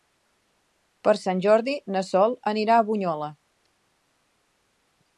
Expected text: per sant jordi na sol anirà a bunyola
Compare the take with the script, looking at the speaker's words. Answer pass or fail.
pass